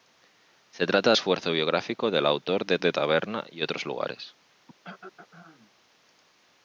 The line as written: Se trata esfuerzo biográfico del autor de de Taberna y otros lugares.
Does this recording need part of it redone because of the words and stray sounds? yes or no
yes